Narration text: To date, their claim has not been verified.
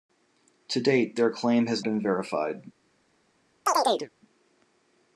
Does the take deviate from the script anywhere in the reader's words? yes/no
yes